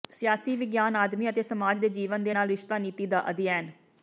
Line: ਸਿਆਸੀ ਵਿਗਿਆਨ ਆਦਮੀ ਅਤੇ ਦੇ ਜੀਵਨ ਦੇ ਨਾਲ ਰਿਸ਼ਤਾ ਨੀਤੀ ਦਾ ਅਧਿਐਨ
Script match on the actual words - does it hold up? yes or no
no